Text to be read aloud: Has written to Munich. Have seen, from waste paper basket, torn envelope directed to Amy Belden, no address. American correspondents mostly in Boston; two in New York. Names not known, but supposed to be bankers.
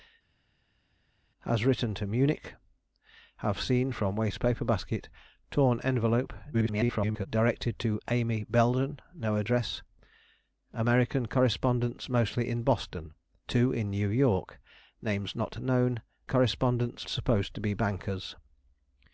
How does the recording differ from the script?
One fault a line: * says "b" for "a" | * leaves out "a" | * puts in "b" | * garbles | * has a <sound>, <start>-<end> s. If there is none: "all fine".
* garbles
* says "correspondents" for "but"